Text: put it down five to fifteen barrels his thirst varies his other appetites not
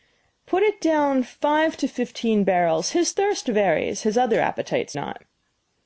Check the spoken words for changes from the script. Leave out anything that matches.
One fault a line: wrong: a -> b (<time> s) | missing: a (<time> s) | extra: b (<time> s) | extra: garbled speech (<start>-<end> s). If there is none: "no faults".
no faults